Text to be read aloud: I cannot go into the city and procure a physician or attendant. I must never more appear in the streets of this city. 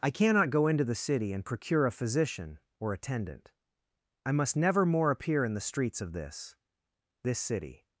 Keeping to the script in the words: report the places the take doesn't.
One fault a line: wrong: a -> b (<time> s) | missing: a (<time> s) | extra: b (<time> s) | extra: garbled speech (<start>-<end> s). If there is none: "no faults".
extra: this (7.2 s)